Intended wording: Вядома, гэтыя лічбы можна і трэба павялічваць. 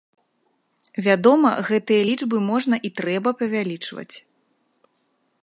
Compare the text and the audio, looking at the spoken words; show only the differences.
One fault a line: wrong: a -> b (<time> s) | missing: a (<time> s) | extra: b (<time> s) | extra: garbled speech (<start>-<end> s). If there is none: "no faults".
no faults